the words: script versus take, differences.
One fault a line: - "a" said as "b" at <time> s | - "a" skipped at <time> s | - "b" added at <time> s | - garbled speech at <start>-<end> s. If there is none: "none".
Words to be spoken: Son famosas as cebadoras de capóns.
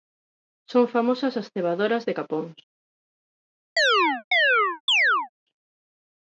none